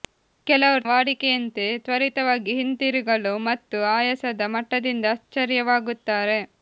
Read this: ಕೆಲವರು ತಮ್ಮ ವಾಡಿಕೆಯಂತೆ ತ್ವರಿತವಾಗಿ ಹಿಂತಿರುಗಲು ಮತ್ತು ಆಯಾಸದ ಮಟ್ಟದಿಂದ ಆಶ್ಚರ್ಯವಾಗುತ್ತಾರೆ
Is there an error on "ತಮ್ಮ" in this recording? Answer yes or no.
yes